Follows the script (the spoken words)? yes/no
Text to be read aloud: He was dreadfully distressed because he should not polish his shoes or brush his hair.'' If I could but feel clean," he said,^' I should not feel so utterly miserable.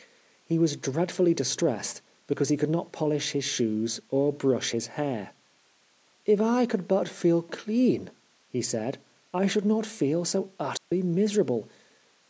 no